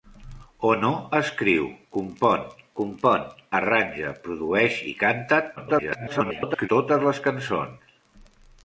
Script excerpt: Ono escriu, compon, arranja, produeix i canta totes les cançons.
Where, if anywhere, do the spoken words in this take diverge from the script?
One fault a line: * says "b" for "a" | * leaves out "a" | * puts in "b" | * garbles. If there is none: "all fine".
* puts in "compon"
* garbles